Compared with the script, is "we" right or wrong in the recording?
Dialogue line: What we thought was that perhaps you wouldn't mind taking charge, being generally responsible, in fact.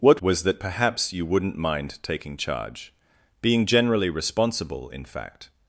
wrong